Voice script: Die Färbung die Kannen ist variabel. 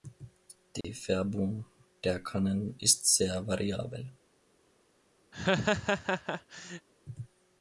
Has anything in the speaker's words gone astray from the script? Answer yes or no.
yes